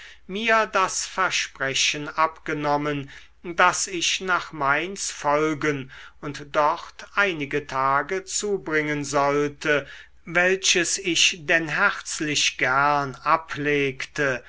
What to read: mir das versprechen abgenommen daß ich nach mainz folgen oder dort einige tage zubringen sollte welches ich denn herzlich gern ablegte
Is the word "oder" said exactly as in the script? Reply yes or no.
no